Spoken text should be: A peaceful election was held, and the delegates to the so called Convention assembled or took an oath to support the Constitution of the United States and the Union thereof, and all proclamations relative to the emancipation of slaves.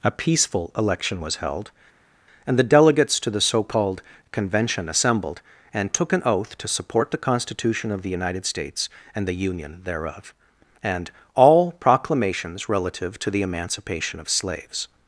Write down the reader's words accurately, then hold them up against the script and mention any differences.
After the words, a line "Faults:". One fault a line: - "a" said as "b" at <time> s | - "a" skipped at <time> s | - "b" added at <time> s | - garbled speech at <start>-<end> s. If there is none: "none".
A peaceful election was held, and the delegates to the so called Convention assembled and took an oath to support the Constitution of the United States and the Union thereof, and all proclamations relative to the emancipation of slaves.
Faults:
- "or" said as "and" at 5.7 s